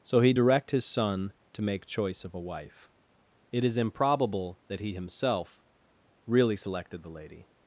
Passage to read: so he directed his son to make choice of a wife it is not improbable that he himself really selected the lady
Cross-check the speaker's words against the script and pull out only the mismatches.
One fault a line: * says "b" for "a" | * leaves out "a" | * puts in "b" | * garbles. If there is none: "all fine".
* says "direct" for "directed"
* leaves out "not"